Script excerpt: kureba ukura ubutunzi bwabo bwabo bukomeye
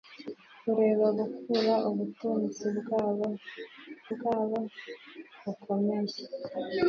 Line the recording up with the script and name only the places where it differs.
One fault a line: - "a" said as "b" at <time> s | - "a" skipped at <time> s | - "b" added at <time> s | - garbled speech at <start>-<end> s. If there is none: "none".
none